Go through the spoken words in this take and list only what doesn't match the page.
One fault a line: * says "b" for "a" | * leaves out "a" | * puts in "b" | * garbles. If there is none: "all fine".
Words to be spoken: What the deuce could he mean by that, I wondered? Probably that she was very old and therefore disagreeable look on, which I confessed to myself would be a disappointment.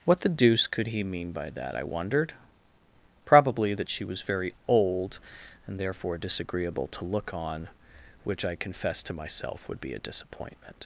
* puts in "to"